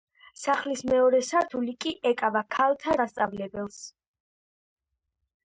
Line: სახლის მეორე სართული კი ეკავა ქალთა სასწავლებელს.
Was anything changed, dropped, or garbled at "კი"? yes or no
no